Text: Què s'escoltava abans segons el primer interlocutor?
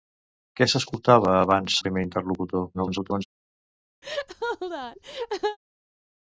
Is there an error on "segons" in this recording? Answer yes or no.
yes